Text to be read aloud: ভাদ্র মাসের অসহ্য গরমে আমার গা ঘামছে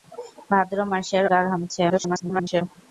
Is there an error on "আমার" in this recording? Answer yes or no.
yes